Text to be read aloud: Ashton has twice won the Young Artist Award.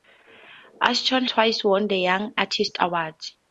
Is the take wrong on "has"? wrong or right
wrong